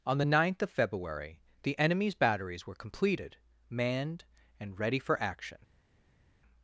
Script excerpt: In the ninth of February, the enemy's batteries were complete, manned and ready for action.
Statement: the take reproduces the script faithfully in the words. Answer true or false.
false